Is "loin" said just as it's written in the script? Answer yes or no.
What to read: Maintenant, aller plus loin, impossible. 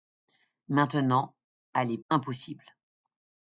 no